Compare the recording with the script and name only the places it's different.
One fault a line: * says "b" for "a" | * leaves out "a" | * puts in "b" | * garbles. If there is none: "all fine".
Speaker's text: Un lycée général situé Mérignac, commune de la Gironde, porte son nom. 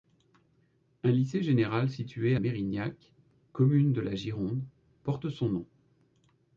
all fine